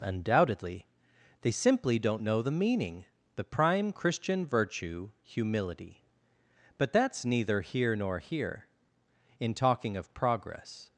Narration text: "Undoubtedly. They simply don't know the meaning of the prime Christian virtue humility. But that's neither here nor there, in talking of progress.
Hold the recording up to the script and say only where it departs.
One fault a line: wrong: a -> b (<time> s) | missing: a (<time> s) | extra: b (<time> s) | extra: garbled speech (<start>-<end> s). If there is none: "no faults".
missing: of (3.0 s)
wrong: there -> here (8.2 s)